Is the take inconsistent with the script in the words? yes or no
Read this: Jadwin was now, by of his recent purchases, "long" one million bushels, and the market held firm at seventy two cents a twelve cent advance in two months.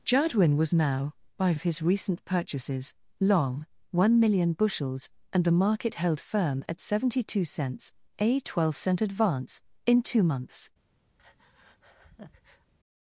no